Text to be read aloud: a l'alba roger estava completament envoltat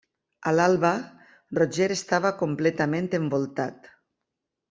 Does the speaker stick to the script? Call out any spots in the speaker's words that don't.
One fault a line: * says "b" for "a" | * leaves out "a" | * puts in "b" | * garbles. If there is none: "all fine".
all fine